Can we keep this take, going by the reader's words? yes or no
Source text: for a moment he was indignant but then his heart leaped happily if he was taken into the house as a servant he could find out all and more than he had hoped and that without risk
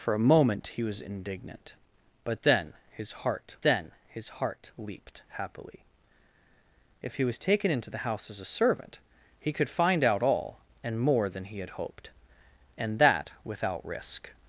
no